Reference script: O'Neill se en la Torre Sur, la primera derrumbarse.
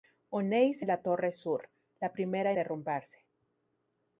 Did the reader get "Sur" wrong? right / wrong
right